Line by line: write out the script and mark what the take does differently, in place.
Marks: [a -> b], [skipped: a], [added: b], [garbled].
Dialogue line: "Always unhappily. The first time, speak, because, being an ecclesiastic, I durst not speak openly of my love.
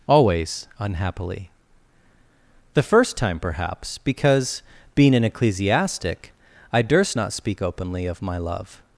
"Always unhappily. The first time, [speak, -> perhaps] because, being an ecclesiastic, I durst not speak openly of my love.